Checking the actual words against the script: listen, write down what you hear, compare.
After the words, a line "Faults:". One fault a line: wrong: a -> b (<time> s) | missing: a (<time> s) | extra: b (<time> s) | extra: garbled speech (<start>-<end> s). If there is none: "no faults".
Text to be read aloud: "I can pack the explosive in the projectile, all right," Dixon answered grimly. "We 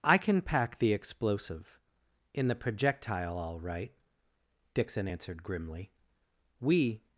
"I can pack the explosive in the projectile, all right," Dixon answered grimly. "We
Faults:
no faults